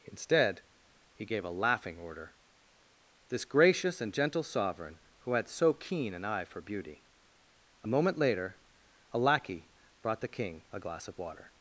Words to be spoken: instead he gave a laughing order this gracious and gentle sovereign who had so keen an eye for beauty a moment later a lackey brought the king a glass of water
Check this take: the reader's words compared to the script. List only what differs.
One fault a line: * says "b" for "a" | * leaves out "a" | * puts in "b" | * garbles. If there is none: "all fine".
all fine